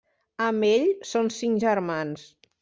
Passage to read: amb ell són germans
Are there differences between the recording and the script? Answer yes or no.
yes